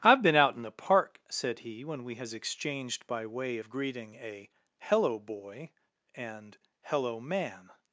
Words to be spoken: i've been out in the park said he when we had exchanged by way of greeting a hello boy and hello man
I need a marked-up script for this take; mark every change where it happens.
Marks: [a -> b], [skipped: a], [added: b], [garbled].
i've been out in the park said he when we [had -> has] exchanged by way of greeting a hello boy and hello man